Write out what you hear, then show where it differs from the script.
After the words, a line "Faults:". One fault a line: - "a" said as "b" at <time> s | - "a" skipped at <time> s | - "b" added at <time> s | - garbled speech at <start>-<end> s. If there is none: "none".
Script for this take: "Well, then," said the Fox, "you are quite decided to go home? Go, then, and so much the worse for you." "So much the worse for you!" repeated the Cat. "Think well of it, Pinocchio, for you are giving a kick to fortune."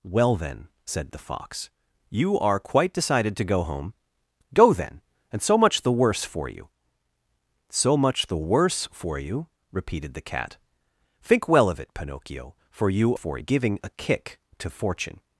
"Well, then," said the Fox, "you are quite decided to go home? Go, then, and so much the worse for you." "So much the worse for you!" repeated the Cat. "Think well of it, Pinocchio, for you for giving a kick to fortune."
Faults:
- "are" said as "for" at 13.1 s